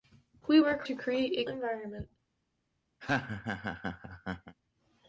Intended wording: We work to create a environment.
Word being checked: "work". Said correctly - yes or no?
yes